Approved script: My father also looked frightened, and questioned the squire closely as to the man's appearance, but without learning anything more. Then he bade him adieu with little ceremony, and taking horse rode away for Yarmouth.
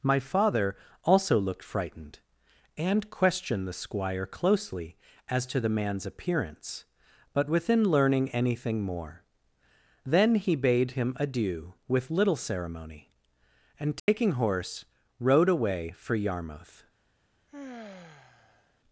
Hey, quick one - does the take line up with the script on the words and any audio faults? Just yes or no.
no